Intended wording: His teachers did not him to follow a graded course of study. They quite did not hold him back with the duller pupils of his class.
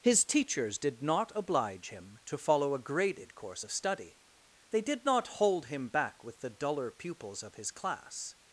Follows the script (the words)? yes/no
no